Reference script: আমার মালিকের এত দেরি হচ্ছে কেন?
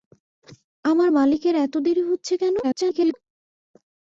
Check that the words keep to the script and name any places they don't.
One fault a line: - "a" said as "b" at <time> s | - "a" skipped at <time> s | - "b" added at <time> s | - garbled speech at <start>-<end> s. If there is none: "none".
- garbled speech at 2.6-3.1 s